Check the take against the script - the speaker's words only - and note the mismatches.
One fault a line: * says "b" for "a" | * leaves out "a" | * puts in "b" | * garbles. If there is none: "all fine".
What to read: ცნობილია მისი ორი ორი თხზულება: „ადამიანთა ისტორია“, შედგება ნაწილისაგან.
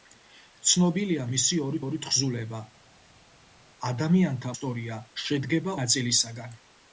all fine